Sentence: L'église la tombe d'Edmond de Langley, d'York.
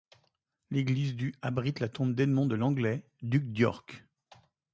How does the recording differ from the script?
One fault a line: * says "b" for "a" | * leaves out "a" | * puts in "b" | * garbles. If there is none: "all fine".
* puts in "du abrite"
* puts in "duc"